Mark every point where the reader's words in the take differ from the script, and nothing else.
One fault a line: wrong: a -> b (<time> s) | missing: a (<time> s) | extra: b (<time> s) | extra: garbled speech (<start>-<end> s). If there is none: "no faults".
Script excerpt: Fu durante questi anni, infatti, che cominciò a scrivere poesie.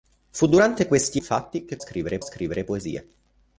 missing: anni (1.2 s)
wrong: cominciò -> scrivere (1.8 s)